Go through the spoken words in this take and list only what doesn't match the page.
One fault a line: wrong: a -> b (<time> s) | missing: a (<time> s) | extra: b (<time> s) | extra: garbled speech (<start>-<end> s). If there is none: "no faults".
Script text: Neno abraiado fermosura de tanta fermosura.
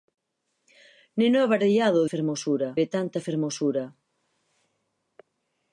no faults